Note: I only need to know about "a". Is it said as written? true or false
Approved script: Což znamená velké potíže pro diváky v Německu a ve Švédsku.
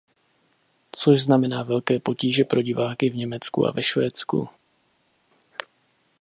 true